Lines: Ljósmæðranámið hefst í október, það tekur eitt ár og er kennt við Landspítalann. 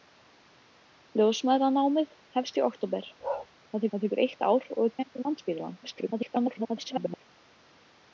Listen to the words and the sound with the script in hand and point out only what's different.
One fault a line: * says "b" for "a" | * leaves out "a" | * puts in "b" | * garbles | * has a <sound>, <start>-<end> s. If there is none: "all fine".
* has a bark, 3.2-3.5 s
* puts in "það"
* garbles